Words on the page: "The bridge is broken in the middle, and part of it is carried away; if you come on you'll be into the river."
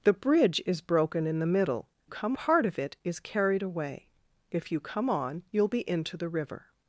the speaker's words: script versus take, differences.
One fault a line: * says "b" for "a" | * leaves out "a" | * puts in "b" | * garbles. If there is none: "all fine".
* says "come" for "and"